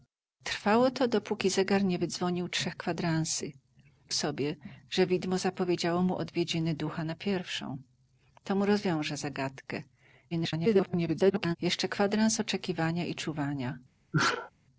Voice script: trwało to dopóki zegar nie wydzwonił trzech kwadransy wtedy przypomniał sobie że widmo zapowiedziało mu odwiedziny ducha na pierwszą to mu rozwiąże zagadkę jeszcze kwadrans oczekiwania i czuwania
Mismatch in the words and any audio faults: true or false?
true